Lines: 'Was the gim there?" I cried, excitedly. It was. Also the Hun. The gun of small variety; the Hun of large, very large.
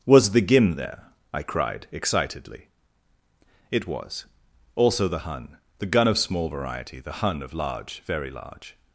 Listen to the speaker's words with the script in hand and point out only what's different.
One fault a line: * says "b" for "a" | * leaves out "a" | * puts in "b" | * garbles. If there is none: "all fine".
all fine